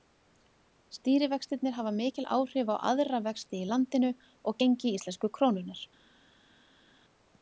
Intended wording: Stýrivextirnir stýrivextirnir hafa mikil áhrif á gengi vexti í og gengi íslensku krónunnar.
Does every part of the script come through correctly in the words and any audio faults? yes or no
no